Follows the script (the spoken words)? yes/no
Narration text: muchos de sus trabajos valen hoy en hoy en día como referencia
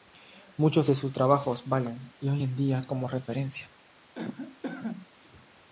no